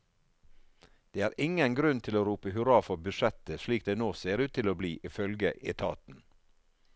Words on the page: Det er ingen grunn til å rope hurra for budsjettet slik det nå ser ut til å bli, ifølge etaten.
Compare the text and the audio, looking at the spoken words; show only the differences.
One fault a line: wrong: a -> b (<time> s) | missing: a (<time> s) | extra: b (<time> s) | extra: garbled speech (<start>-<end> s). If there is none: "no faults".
no faults